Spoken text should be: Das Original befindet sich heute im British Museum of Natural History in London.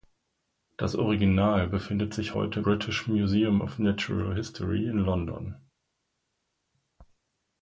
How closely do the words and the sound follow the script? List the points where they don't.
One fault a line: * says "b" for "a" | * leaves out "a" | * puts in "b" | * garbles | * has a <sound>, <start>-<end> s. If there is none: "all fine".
* leaves out "im"